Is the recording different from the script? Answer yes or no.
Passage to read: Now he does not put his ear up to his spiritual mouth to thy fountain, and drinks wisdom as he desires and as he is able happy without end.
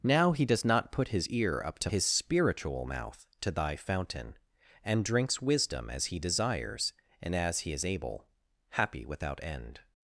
no